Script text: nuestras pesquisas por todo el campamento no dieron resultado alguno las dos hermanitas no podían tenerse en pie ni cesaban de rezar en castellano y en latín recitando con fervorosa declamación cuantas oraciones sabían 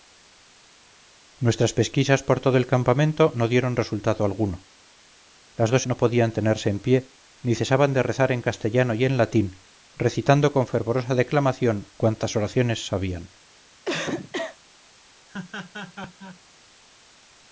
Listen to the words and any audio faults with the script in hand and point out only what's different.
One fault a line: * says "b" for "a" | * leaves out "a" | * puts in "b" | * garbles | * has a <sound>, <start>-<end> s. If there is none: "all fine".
* leaves out "hermanitas"
* has a cough, 13.9-14.6 s
* has a laugh, 15.3-16.4 s